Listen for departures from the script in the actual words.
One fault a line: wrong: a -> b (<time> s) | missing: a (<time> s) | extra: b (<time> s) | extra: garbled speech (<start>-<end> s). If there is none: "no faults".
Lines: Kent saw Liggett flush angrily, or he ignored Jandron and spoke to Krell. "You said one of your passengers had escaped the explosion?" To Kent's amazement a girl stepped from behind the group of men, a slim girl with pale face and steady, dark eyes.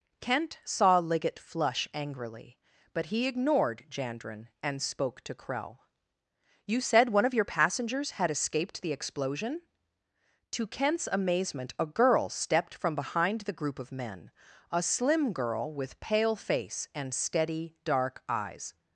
wrong: or -> but (2.9 s)